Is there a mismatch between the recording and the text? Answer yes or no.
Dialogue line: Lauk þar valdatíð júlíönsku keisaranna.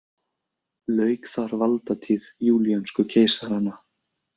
no